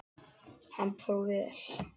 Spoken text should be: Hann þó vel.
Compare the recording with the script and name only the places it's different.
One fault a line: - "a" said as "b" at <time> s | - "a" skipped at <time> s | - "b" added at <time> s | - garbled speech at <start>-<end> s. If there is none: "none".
none